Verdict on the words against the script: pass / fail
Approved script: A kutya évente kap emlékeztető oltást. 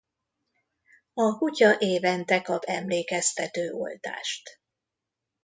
pass